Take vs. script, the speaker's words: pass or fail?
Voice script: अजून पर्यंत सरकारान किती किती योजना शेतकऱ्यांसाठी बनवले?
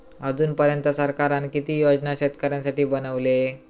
fail